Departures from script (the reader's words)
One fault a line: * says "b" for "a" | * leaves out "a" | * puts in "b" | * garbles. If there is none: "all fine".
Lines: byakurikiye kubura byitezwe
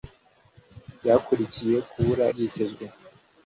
all fine